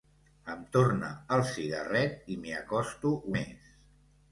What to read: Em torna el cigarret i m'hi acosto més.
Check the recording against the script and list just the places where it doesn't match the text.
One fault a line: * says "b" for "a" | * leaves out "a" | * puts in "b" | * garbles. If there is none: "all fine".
all fine